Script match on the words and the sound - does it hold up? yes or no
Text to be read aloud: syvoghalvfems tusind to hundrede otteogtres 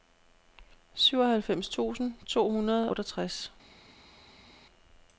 yes